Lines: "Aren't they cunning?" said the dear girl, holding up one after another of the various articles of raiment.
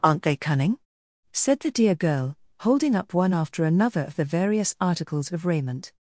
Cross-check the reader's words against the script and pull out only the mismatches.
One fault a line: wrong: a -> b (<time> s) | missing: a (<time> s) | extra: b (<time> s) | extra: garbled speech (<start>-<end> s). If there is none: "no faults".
no faults